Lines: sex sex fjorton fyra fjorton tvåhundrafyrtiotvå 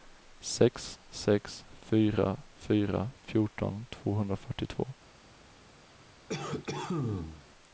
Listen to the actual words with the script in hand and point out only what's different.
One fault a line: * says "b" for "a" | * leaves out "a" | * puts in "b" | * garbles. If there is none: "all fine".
* says "fyra" for "fjorton"